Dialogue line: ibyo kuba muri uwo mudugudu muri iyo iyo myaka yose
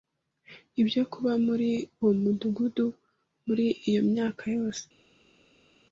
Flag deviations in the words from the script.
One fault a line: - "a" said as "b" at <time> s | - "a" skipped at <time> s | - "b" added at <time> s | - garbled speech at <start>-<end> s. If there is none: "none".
- "iyo" skipped at 4.0 s